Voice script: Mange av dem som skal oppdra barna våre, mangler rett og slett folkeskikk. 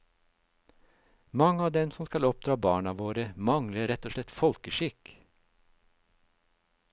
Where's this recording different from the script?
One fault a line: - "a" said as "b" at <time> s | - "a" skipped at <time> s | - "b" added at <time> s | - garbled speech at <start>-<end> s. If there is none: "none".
none